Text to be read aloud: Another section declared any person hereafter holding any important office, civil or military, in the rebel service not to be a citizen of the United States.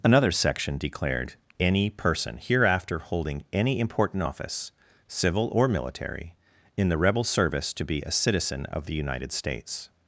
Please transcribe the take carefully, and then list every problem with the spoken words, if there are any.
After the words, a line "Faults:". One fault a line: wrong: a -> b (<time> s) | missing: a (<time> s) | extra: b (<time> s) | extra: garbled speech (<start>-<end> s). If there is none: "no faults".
Another section declared any person hereafter holding any important office, civil or military, in the rebel service to be a citizen of the United States.
Faults:
missing: not (7.7 s)